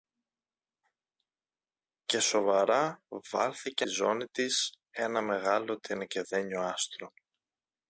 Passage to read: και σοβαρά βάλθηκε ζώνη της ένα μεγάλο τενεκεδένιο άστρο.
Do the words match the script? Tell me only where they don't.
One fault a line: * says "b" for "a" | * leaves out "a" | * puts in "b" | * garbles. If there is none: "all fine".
all fine